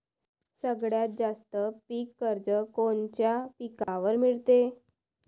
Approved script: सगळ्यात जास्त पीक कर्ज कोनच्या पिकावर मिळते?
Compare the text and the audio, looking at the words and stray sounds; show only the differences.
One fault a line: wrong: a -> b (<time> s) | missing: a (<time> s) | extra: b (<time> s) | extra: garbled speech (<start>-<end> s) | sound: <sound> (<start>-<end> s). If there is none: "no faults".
sound: dropout (3.8-3.9 s)